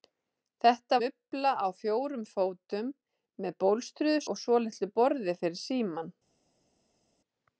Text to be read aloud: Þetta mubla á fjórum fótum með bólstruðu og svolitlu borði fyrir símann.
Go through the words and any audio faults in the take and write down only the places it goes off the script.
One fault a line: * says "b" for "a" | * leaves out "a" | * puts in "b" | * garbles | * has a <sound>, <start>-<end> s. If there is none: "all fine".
all fine